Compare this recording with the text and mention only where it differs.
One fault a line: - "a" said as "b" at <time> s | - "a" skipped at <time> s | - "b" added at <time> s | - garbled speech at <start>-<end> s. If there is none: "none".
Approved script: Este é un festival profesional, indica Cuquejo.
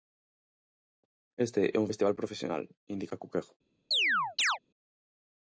none